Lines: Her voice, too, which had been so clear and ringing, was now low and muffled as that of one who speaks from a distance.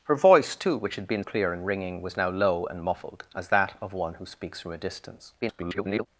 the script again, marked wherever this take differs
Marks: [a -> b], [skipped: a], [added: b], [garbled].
Her voice, too, which had been [skipped: so] clear and ringing, was now low and muffled as that of one who speaks from a distance. [garbled]